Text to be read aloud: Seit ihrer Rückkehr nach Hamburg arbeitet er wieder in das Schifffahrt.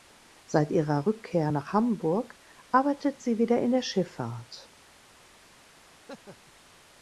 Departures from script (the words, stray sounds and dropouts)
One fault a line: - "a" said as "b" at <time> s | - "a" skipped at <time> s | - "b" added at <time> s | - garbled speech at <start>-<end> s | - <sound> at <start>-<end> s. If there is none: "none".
- "er" said as "sie" at 3.2 s
- "das" said as "der" at 3.7 s
- laugh at 5.9-6.5 s